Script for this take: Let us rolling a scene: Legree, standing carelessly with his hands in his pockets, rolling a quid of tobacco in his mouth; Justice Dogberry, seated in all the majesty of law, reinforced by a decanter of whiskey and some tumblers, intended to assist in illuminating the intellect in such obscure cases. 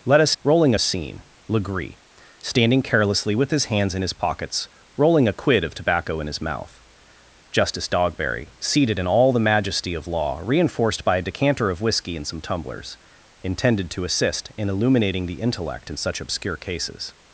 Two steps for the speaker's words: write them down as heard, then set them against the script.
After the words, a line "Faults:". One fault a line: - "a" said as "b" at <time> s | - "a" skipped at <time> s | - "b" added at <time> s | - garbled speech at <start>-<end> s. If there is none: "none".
Let us rolling a scene: Legree, standing carelessly with his hands in his pockets, rolling a quid of tobacco in his mouth; Justice Dogberry, seated in all the majesty of law, reinforced by a decanter of whiskey and some tumblers, intended to assist in illuminating the intellect in such obscure cases.
Faults:
none